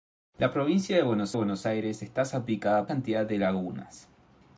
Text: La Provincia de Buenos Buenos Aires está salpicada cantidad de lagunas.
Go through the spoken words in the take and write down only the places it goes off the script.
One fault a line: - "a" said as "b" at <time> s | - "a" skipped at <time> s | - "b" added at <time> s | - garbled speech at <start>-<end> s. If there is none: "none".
none